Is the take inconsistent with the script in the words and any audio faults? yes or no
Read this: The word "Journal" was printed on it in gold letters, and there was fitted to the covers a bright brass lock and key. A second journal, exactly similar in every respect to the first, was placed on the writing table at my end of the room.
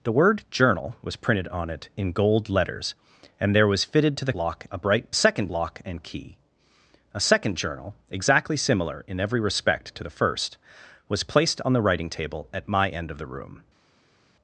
yes